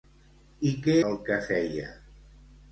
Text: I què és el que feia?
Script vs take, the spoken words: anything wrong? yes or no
yes